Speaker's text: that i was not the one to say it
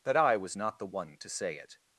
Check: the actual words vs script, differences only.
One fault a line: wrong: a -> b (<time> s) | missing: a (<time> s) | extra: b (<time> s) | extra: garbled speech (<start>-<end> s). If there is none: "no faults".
no faults